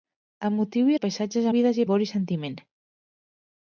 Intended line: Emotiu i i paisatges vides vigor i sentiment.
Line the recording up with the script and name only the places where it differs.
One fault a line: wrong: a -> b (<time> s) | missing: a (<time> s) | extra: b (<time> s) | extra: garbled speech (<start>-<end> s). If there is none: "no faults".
no faults